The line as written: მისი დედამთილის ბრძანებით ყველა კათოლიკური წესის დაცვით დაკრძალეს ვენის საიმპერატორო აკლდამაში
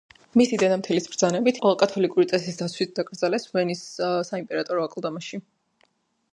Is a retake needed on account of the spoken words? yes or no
no